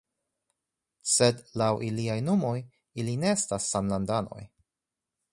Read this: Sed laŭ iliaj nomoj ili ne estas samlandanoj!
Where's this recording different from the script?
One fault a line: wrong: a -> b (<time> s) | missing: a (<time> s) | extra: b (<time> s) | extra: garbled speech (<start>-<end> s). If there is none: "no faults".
no faults